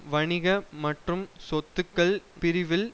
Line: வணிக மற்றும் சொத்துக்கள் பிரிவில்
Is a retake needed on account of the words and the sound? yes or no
no